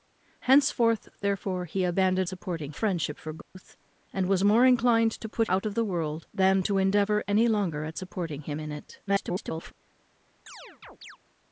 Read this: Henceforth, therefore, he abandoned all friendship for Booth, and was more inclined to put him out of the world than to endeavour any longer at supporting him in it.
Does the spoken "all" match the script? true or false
false